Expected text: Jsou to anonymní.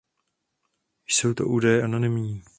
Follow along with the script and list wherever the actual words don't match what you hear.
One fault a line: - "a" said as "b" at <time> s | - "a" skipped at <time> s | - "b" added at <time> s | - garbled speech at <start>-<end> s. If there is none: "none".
- "údaje" added at 1.5 s